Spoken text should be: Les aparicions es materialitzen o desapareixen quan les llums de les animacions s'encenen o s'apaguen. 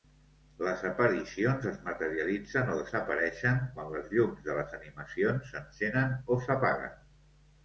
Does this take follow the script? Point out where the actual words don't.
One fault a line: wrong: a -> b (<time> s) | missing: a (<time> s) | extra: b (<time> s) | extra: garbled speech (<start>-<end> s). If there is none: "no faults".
no faults